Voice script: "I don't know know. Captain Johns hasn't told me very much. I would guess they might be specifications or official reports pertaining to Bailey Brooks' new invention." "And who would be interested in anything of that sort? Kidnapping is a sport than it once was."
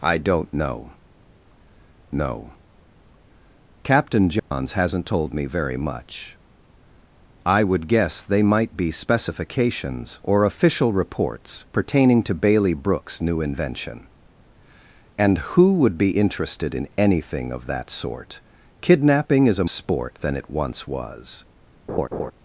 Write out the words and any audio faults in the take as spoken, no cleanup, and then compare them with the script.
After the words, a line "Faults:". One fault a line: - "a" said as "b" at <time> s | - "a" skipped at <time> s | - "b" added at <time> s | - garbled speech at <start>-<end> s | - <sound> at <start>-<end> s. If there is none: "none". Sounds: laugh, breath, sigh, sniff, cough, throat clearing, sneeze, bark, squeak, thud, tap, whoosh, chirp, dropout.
"I don't know know. Captain Johns hasn't told me very much. I would guess they might be specifications or official reports pertaining to Bailey Brooks' new invention." "And who would be interested in anything of that sort? Kidnapping is a sport than it once was."
Faults:
- dropout at 4.4-4.5 s
- laugh at 21.9-22.3 s